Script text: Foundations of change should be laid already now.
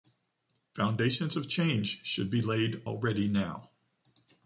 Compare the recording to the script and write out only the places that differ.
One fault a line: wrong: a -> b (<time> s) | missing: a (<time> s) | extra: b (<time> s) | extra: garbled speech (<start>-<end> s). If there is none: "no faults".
no faults